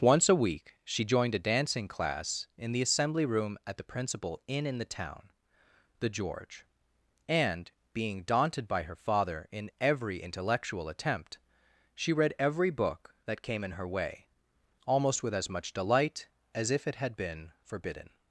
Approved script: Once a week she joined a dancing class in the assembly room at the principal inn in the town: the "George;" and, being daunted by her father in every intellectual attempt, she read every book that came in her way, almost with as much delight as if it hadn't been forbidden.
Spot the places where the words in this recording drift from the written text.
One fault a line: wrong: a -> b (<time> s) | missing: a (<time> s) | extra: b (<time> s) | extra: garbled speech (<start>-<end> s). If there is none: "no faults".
wrong: hadn't -> had (16.9 s)